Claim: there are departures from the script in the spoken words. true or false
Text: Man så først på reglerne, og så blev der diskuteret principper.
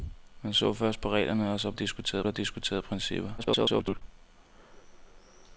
true